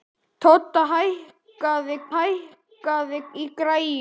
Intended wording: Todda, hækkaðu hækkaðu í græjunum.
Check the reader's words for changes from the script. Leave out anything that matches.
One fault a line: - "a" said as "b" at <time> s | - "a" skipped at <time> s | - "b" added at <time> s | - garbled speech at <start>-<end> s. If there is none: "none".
none